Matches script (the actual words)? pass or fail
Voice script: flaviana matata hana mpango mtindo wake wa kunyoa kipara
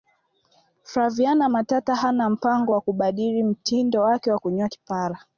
fail